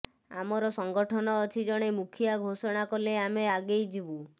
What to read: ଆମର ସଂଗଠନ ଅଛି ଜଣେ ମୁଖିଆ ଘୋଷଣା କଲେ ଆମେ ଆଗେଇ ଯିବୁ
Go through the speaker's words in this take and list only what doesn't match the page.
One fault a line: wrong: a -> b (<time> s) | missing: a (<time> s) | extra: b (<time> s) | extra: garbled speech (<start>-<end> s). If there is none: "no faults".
no faults